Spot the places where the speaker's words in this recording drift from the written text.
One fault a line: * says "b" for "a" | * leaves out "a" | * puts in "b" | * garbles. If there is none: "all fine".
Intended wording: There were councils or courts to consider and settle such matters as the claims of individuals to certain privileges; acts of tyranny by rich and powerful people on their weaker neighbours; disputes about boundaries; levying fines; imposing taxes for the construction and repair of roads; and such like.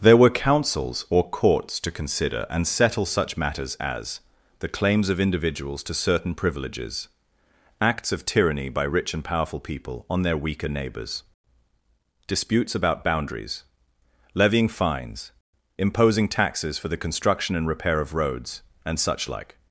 all fine